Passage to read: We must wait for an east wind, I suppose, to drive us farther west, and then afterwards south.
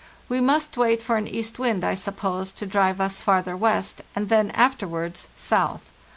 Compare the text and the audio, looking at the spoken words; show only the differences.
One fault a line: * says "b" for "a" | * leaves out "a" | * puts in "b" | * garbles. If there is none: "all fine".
all fine